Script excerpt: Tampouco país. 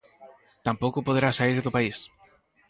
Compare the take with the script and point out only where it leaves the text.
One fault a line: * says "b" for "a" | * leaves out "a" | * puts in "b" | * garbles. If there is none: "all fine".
* puts in "poderá saír do"